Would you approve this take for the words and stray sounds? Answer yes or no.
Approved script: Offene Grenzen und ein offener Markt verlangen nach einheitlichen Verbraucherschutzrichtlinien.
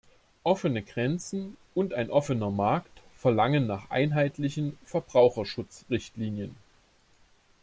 yes